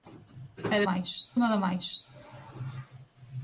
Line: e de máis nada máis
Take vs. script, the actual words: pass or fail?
pass